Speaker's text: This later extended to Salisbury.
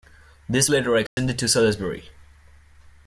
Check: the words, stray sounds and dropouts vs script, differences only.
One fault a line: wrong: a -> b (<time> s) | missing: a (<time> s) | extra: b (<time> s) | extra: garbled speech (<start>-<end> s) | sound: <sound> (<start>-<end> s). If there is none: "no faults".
sound: dropout (1.1-1.2 s)